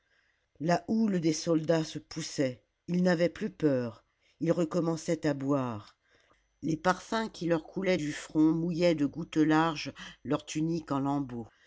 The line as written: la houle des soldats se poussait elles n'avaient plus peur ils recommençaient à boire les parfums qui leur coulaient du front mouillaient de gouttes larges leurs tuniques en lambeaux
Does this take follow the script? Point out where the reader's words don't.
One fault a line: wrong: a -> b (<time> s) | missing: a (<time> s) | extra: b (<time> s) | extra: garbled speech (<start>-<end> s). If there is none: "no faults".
wrong: elles -> ils (2.9 s)